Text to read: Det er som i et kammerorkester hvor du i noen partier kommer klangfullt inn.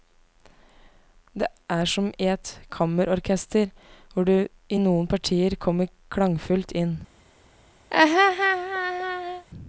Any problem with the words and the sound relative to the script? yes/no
yes